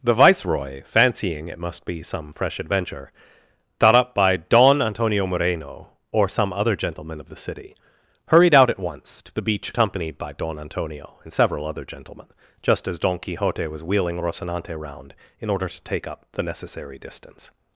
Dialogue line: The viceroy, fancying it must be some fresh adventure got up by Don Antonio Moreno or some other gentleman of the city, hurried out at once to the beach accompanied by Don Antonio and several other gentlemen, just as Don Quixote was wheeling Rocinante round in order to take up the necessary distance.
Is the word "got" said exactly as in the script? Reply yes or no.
no